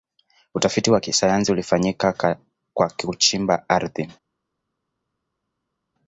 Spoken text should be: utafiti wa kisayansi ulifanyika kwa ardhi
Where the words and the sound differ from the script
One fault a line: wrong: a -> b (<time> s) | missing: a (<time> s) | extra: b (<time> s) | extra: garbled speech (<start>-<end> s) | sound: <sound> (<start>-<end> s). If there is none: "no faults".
extra: kuchimba (2.9 s)